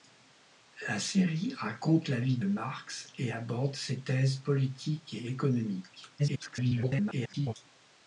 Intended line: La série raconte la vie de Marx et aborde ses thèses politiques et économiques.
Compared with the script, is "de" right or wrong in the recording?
wrong